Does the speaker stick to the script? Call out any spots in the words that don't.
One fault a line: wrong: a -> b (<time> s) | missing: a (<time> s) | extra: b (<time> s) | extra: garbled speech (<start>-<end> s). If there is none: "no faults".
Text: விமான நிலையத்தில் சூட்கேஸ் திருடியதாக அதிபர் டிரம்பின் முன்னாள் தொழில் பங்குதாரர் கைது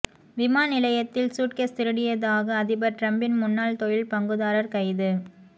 no faults